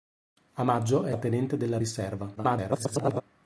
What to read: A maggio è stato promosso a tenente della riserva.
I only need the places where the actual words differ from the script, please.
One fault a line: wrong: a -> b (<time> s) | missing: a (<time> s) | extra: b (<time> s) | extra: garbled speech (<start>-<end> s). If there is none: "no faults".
missing: stato promosso (1.1 s)
extra: garbled speech (2.4-3.2 s)